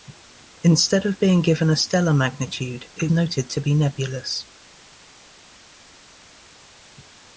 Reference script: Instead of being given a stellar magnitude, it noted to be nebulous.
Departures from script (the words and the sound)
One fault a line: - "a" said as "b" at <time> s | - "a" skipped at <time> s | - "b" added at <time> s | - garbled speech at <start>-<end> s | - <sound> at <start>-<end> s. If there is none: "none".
none